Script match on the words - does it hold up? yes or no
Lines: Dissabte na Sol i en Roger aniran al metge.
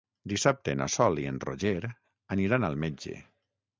yes